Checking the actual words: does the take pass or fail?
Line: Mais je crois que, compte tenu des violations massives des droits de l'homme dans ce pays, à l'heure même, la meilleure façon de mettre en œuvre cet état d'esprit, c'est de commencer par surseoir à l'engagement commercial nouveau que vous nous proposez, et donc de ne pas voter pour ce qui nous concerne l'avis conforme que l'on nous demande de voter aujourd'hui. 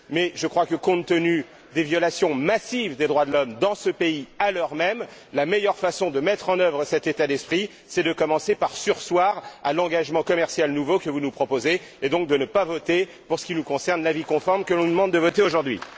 pass